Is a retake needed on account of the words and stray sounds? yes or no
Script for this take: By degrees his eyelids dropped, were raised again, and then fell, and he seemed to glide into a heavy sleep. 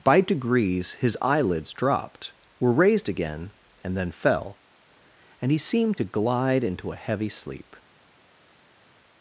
no